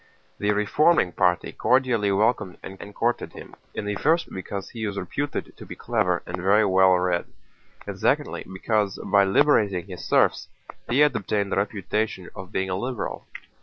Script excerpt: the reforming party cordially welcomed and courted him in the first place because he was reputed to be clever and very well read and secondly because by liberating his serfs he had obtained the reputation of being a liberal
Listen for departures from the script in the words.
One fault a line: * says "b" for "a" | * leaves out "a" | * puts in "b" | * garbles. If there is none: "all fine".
* puts in "and"
* leaves out "place"